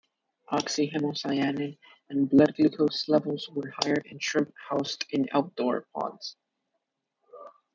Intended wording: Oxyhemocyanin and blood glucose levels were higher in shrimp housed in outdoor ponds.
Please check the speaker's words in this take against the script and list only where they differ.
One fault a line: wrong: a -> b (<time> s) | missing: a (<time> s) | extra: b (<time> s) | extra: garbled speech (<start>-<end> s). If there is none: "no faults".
no faults